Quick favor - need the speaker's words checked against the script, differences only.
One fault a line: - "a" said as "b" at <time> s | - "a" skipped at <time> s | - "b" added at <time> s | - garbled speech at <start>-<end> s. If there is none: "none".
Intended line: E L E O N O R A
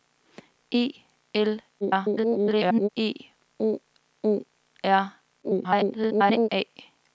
- garbled speech at 1.8-2.9 s
- "N" skipped at 3.8 s
- garbled speech at 5.4-6.5 s